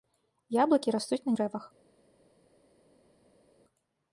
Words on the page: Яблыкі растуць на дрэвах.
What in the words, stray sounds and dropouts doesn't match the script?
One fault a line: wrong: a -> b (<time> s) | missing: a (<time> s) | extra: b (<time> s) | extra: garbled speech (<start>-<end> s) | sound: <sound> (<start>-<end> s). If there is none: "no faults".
no faults